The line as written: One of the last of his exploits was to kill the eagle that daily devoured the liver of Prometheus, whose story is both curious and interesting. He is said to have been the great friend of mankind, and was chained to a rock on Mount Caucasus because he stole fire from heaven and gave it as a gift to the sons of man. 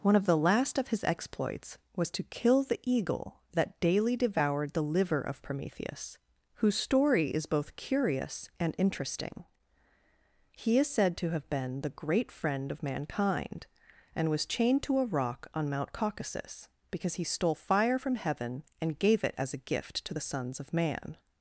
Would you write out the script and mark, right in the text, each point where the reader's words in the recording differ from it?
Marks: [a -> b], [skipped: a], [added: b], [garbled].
One of the last of his exploits was to kill the eagle that daily devoured the liver of Prometheus, whose story is both curious and interesting. He is said to have been the great friend of mankind, and was chained to a rock on Mount Caucasus because he stole fire from heaven and gave it as a gift to the sons of man.